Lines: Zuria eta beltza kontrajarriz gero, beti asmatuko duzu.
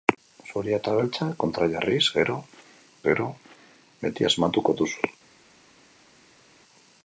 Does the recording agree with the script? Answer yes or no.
no